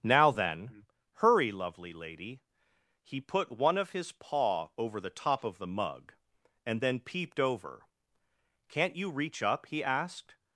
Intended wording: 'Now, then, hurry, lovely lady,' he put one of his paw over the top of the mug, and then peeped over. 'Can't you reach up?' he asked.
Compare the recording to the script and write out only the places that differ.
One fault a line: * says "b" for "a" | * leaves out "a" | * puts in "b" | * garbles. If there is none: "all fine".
all fine